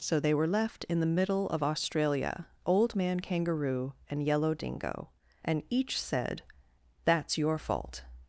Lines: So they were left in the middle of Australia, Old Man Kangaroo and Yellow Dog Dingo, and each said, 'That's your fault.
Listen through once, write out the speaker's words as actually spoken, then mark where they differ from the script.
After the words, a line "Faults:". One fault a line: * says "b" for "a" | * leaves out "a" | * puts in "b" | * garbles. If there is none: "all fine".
So they were left in the middle of Australia, Old Man Kangaroo and Yellow Dingo, and each said, 'That's your fault.
Faults:
* leaves out "Dog"